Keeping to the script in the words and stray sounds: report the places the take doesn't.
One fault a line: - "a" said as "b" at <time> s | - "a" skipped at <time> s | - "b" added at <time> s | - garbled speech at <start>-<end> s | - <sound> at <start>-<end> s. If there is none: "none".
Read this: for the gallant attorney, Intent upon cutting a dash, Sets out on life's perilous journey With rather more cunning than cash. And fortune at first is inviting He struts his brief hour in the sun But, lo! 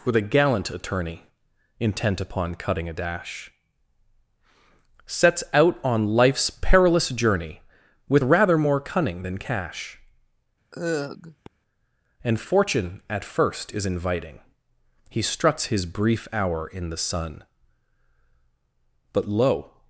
- "for the" said as "with a" at 0.1 s
- sigh at 10.7-11.5 s